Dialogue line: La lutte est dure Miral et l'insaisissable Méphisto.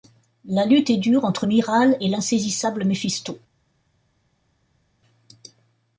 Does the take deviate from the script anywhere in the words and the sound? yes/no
yes